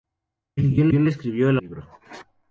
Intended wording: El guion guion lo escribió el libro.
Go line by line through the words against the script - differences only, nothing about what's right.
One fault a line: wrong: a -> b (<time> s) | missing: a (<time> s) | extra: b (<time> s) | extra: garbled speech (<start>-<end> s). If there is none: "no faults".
no faults